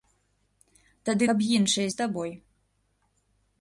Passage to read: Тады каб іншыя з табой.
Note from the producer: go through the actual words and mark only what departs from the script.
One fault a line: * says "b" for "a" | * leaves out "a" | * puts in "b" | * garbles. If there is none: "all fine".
all fine